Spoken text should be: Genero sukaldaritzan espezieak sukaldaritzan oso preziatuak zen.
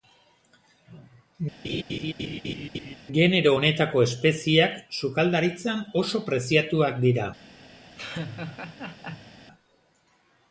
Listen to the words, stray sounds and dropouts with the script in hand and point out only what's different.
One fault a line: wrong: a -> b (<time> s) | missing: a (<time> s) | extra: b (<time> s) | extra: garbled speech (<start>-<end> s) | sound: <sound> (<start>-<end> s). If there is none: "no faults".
sound: laugh (1.6-3.0 s)
wrong: sukaldaritzan -> honetako (3.5 s)
wrong: zen -> dira (7.1 s)
sound: laugh (8.0-9.3 s)